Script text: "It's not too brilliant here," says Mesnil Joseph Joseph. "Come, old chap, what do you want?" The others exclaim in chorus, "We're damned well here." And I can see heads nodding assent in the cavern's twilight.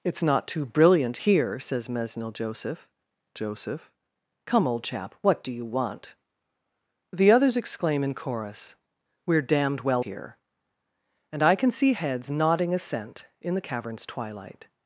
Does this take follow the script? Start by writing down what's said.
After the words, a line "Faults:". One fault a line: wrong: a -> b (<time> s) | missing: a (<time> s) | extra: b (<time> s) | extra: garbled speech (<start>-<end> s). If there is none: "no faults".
"It's not too brilliant here," says Mesnil Joseph Joseph. "Come, old chap, what do you want?" The others exclaim in chorus, "We're damned well here." And I can see heads nodding assent in the cavern's twilight.
Faults:
no faults